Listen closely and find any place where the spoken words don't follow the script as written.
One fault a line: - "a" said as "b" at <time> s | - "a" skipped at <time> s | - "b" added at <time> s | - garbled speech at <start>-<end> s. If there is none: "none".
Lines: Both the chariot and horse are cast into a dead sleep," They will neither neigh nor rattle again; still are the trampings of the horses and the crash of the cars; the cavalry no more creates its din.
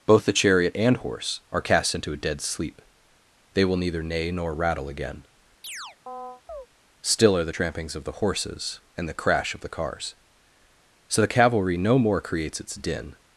- "so" added at 11.1 s